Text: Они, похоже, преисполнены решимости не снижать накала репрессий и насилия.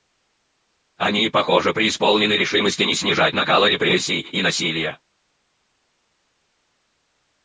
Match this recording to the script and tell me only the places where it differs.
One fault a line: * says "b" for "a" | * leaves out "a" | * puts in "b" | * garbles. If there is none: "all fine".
all fine